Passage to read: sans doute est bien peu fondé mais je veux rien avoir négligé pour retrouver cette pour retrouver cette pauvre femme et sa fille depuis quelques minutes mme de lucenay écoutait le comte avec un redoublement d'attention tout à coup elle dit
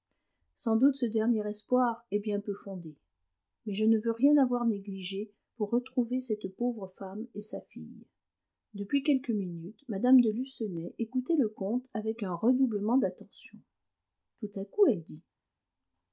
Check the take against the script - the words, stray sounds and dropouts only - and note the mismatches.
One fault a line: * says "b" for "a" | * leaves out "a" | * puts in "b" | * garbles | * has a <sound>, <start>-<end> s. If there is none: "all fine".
* puts in "ce dernier espoir"
* puts in "ne"
* leaves out "pour retrouver cette"